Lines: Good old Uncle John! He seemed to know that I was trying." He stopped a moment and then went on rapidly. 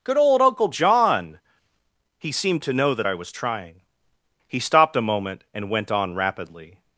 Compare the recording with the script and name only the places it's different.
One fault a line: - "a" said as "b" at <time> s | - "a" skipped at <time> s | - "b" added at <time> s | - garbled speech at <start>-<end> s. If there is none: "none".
- "then" skipped at 5.7 s